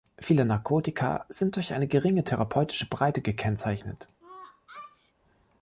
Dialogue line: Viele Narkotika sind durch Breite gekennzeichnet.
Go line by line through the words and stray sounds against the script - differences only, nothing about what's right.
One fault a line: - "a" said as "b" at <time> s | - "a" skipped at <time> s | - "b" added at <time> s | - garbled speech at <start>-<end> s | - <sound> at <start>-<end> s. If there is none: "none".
- "eine geringe therapeutische" added at 1.7 s
- sneeze at 4.2-5.1 s